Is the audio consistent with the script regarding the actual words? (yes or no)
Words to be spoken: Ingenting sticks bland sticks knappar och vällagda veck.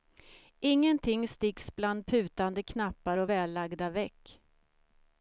no